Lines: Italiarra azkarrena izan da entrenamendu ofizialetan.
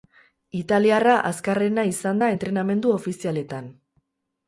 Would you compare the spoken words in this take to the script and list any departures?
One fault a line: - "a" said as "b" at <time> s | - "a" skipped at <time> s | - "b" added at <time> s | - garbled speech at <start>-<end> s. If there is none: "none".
none